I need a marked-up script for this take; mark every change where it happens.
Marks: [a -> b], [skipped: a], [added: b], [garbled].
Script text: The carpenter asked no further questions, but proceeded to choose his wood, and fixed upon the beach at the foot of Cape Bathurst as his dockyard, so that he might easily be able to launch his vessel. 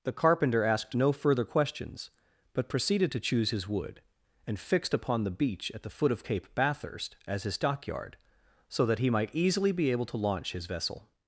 The carpenter asked no further questions, but proceeded to choose his wood, and fixed upon the beach at the foot of Cape Bathurst as his dockyard, so that he might easily be able to launch his vessel.